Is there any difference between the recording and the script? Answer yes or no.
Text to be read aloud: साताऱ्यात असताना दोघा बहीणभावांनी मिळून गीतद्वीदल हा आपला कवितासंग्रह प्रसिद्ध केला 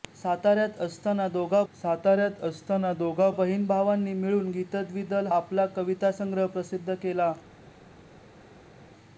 yes